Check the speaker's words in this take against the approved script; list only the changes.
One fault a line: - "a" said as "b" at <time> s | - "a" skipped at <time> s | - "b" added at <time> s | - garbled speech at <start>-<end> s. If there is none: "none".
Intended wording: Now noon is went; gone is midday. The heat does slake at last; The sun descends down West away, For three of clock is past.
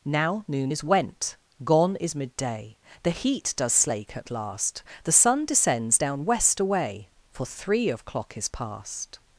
none